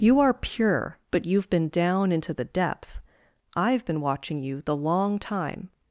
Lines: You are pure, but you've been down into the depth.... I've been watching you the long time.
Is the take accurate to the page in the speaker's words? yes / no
yes